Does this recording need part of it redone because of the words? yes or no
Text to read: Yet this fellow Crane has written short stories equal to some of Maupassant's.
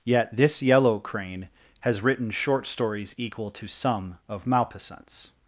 yes